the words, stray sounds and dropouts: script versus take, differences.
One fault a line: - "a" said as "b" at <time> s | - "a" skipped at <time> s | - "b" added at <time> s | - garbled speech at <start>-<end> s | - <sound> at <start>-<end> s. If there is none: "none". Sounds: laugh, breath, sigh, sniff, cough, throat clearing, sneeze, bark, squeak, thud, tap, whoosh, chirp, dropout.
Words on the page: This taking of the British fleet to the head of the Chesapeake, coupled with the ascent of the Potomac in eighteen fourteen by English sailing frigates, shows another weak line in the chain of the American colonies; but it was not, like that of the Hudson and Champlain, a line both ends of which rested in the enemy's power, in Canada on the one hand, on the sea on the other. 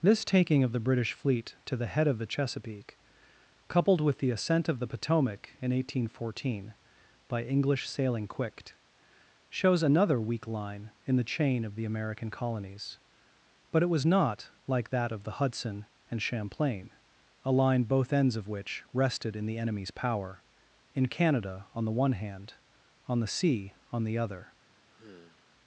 - "frigates" said as "quicked" at 8.3 s
- sigh at 24.9-25.5 s